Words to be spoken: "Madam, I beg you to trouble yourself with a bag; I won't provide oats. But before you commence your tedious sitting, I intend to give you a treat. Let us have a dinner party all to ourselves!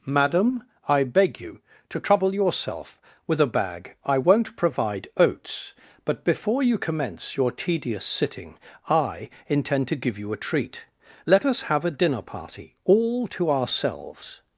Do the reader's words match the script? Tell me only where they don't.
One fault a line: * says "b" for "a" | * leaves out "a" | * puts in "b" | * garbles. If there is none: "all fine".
all fine